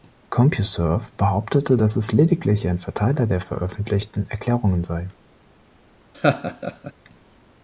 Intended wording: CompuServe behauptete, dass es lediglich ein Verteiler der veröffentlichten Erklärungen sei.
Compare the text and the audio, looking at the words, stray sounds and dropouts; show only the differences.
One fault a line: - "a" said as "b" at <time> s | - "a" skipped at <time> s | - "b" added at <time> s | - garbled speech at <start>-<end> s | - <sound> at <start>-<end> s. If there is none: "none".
- laugh at 6.1-6.9 s